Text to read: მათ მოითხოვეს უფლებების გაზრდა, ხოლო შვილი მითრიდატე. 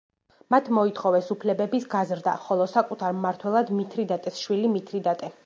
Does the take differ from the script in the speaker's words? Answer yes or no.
yes